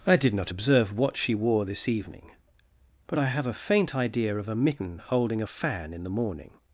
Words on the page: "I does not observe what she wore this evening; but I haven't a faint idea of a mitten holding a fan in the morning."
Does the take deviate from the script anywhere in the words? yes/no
yes